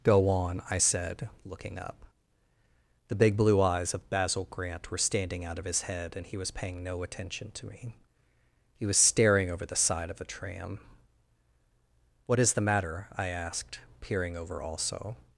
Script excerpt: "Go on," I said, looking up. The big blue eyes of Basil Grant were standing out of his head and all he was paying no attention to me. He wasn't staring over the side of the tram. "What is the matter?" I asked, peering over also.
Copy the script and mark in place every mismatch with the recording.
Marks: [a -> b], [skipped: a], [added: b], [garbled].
"Go on," I said, looking up. The big blue eyes of Basil Grant were standing out of his head and [skipped: all] he was paying no attention to me. He [wasn't -> was] staring over the side of the tram. "What is the matter?" I asked, peering over also.